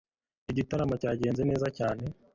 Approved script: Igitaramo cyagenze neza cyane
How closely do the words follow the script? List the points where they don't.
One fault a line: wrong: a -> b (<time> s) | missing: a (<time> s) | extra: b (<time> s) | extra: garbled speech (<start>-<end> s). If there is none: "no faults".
no faults